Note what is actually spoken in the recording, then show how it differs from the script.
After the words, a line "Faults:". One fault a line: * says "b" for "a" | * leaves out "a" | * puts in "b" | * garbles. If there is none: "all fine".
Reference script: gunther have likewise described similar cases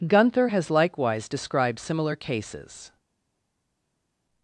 gunther has likewise described similar cases
Faults:
* says "has" for "have"